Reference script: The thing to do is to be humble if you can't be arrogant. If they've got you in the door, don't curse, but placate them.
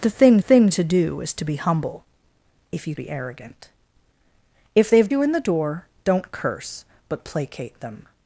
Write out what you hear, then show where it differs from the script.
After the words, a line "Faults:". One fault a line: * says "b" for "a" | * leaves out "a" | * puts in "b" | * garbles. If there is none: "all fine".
The thing thing to do is to be humble if you be arrogant. If they've you in the door, don't curse, but placate them.
Faults:
* puts in "thing"
* leaves out "can't"
* leaves out "got"